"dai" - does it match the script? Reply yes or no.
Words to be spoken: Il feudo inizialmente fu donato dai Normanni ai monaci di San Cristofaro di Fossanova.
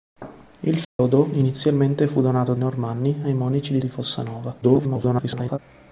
no